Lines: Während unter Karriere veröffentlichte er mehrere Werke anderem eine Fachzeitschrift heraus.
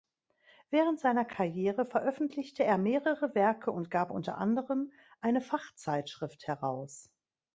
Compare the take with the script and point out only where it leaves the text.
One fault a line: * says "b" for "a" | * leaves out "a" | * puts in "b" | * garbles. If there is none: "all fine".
* says "seiner" for "unter"
* puts in "und gab unter"